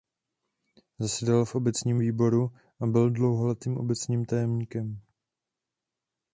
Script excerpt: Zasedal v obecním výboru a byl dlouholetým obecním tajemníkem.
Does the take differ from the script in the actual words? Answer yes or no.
no